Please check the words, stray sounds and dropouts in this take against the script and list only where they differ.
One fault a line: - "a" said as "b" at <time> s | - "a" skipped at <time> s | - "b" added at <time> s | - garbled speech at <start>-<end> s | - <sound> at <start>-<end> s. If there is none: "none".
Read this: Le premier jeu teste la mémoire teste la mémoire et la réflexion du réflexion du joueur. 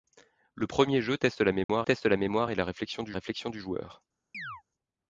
- dropout at 1.6-1.7 s
- chirp at 4.3-4.6 s